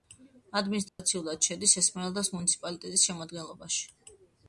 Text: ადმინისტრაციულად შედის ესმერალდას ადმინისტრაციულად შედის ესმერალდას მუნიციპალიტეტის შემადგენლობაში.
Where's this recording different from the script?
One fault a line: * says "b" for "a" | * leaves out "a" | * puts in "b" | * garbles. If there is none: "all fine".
* leaves out "ადმინისტრაციულად შედის ესმერალდას"